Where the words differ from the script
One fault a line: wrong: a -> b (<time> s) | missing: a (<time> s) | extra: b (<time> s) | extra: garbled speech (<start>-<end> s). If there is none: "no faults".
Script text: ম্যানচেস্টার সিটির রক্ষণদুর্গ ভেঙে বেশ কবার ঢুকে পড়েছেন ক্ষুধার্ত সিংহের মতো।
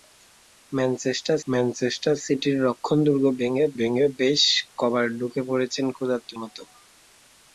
extra: ম্যানচেস্টার (1.5 s)
extra: ভেঙে (3.8 s)
missing: সিংহের (6.3 s)